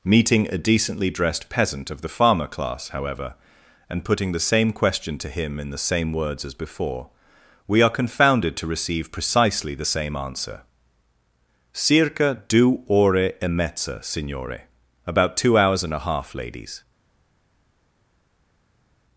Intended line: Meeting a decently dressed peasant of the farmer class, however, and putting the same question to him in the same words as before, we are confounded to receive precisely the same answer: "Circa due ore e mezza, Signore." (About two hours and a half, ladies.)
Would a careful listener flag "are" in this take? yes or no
no